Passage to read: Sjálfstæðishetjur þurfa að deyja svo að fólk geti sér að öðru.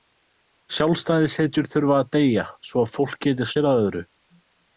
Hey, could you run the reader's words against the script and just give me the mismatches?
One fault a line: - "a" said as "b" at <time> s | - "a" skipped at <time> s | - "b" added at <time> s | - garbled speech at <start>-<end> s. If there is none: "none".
none